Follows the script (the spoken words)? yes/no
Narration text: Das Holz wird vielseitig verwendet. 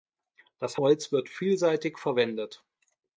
yes